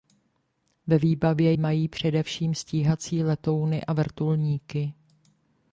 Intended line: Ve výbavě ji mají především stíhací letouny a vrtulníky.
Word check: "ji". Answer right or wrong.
wrong